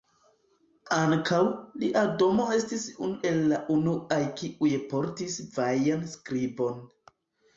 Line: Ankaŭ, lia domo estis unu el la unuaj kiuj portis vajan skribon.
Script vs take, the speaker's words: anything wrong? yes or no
no